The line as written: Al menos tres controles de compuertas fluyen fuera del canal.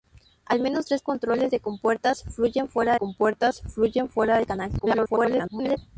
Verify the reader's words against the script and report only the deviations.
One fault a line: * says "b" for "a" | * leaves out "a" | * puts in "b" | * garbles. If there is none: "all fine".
* puts in "compuertas fluyen fuera"
* garbles